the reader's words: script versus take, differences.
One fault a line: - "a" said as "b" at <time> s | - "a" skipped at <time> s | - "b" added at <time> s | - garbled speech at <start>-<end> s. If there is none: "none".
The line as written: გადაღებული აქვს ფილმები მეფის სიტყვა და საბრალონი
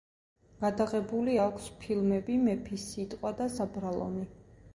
none